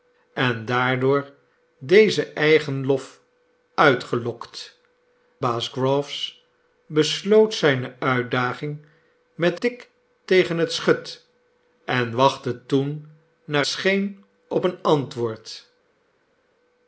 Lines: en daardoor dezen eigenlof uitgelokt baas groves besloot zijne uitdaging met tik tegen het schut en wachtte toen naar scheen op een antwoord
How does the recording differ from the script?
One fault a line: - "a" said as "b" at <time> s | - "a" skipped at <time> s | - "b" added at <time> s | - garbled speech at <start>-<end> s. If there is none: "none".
none